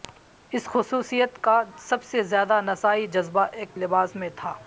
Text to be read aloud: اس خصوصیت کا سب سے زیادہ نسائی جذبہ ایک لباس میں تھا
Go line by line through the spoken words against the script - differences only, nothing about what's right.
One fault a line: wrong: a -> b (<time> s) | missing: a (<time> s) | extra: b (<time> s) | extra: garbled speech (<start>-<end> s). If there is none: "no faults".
no faults